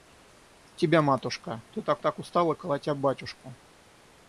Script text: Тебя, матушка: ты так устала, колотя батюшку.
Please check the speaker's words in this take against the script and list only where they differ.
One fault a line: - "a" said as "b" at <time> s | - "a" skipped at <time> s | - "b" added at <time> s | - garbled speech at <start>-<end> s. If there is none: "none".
- "так" added at 2.0 s